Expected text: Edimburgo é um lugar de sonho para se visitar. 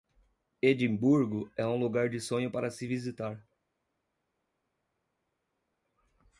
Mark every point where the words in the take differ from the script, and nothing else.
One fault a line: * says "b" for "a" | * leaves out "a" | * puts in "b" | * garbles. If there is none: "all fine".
all fine